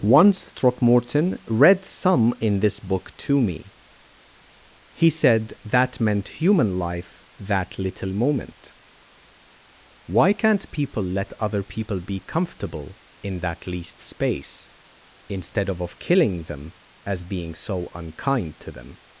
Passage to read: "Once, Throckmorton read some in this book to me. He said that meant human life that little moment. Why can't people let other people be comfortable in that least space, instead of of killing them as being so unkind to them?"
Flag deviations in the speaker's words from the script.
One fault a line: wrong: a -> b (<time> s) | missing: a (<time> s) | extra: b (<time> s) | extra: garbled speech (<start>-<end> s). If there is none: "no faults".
no faults